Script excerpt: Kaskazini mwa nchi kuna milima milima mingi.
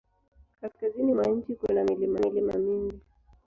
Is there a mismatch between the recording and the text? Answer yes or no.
no